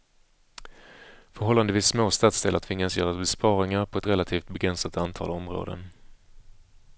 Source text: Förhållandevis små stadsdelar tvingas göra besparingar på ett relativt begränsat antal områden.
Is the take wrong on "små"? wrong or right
right